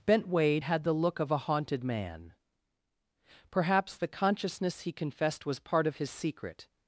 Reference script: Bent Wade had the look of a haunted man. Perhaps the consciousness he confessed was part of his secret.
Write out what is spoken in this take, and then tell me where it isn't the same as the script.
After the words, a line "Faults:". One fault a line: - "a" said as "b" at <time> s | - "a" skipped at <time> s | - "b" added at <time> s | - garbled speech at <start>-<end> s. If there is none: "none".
Bent Wade had the look of a haunted man. Perhaps the consciousness he confessed was part of his secret.
Faults:
none